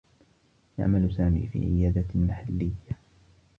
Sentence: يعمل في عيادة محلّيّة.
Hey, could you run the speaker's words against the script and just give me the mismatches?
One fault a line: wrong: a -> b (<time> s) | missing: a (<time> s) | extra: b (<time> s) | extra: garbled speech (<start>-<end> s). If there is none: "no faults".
extra: سامي (1.1 s)